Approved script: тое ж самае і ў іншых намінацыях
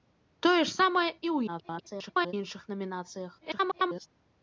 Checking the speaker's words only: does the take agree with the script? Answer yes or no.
no